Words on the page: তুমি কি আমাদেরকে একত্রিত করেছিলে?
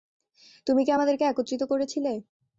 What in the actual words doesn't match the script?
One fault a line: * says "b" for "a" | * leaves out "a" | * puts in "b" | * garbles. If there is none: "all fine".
all fine